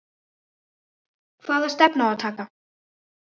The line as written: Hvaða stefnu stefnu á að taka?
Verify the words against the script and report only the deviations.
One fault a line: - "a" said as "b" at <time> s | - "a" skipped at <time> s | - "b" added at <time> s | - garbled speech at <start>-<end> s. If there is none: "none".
- "stefnu" skipped at 2.1 s